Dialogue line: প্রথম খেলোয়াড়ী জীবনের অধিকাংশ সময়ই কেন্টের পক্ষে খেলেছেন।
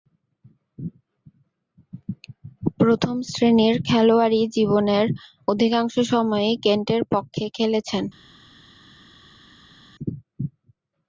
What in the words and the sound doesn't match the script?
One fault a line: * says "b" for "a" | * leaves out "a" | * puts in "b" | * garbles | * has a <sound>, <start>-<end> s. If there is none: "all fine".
* puts in "শ্রেণীর"